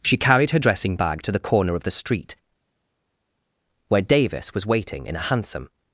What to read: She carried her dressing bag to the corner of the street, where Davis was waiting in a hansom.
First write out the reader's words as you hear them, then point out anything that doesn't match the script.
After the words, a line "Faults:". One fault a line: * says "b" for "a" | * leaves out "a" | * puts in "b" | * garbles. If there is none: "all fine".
She carried her dressing bag to the corner of the street, where Davis was waiting in a hansom.
Faults:
all fine